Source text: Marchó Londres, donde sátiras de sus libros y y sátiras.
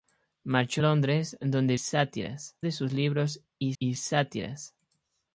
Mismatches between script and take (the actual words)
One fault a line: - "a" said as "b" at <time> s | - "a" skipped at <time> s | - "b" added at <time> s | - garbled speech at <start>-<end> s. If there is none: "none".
none